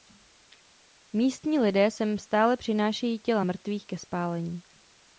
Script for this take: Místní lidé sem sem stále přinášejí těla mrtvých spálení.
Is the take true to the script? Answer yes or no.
no